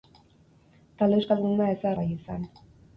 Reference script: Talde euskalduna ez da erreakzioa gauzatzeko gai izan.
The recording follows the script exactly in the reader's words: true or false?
false